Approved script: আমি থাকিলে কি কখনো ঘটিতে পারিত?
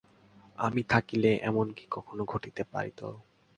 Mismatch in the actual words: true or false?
true